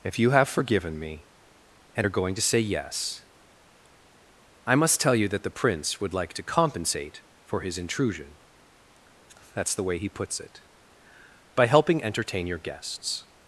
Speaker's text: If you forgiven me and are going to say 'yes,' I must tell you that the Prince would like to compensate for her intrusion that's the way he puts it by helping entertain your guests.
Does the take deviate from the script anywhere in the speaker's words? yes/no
yes